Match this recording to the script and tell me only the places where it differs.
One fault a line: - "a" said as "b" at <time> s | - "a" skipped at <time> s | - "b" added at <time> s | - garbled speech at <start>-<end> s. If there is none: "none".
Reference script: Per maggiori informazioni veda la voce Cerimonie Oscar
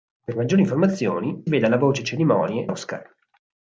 none